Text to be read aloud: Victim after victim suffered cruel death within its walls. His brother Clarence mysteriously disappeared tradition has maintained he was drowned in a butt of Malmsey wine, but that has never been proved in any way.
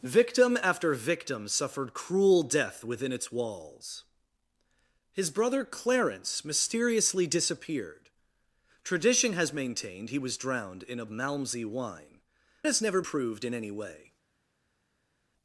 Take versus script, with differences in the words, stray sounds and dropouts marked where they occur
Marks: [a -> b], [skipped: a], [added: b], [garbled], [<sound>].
Victim after victim suffered cruel death within its walls. His brother Clarence mysteriously disappeared tradition has maintained he was drowned in a [skipped: butt of] Malmsey wine, [skipped: but that] has never [skipped: been] proved in any way.